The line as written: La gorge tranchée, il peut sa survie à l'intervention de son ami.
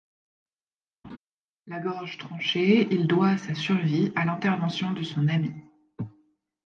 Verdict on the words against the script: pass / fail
fail